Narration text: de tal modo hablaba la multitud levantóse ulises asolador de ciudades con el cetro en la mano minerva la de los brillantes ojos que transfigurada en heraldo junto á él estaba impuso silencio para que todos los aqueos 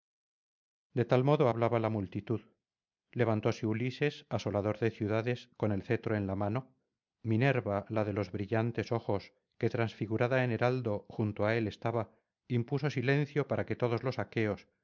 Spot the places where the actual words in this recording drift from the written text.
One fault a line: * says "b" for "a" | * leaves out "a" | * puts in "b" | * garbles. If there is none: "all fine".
all fine